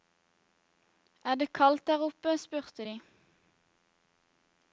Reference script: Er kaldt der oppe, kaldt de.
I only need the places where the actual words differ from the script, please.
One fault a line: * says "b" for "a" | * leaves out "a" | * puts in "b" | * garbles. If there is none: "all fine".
* puts in "det"
* says "spurte" for "kaldt"